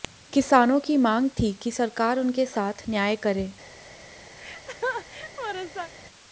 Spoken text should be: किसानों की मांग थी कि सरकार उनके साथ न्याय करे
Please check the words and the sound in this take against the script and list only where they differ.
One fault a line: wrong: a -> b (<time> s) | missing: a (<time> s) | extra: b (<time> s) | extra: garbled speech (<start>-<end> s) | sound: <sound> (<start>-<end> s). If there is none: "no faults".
sound: laugh (4.4-5.9 s)